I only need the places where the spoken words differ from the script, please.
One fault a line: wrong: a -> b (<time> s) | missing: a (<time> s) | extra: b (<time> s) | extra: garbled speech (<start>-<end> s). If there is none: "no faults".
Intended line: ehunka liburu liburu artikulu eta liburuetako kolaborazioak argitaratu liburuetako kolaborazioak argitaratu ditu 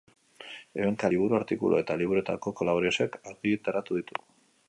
missing: liburu (1.4 s)
missing: liburuetako kolaborazioak argitaratu (4.0 s)